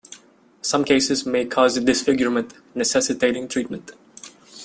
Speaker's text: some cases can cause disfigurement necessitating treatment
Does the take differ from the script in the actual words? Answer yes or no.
yes